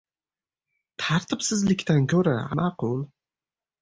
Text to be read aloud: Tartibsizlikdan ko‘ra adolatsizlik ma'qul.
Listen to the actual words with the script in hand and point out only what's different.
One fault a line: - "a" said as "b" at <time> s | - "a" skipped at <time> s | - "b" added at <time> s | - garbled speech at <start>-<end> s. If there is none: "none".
- "adolatsizlik" skipped at 2.4 s